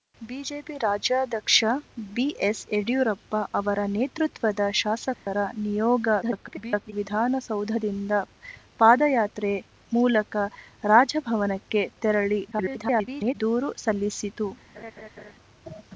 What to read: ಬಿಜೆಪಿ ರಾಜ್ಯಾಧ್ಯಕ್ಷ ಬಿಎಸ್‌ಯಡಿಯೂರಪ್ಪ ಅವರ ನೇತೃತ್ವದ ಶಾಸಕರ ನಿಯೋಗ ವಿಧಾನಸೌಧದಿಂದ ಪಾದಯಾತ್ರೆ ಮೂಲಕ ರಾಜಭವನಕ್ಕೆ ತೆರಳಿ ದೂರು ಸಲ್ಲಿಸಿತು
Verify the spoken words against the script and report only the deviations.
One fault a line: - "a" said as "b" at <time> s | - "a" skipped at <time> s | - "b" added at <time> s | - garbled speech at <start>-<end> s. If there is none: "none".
- garbled speech at 6.2-6.9 s
- garbled speech at 12.5-13.4 s